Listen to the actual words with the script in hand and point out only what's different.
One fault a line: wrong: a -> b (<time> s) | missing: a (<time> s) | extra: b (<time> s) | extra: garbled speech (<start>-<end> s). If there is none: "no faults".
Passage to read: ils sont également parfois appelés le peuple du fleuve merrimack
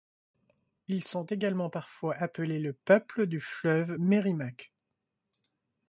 no faults